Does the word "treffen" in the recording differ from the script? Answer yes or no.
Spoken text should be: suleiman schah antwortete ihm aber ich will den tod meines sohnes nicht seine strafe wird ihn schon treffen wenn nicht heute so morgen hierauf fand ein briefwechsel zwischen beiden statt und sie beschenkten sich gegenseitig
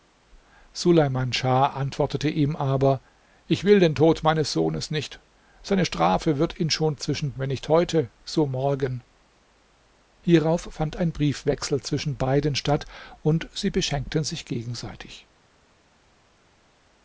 yes